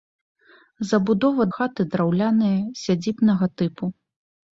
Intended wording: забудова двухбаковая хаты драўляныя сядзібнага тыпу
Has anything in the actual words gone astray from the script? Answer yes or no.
yes